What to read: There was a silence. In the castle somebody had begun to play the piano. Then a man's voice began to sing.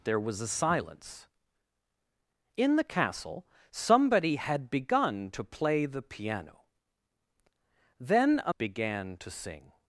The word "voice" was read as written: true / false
false